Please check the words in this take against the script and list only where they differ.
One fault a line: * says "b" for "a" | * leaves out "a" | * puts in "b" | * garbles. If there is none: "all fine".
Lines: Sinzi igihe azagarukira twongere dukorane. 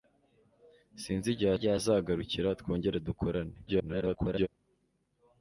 * puts in "igihe"
* garbles